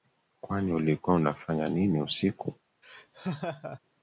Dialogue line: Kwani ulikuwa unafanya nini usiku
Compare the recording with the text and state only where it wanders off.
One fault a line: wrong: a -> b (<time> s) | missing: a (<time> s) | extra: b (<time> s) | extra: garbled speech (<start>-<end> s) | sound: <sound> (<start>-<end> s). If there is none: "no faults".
sound: laugh (2.8-3.8 s)